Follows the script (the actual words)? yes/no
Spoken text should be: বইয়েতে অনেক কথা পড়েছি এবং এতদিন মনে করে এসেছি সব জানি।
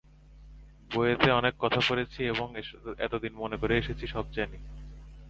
yes